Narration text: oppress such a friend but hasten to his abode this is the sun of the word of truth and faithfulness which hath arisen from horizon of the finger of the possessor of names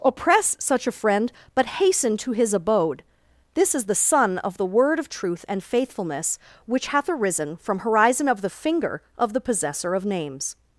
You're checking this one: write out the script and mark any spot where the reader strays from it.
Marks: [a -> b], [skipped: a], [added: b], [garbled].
oppress such a friend but hasten to his abode this is the sun of the word of truth and faithfulness which hath arisen from horizon of the finger of the possessor of names